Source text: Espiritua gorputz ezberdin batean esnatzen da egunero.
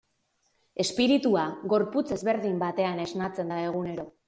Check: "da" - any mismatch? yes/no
no